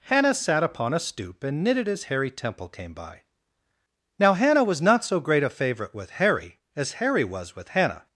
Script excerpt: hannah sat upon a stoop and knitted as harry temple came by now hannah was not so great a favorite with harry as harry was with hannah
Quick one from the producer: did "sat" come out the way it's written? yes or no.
yes